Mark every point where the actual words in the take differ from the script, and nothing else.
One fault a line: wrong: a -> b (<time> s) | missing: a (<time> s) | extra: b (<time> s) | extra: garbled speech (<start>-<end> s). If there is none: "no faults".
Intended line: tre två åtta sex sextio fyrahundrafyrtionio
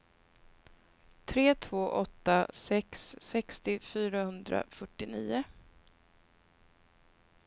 no faults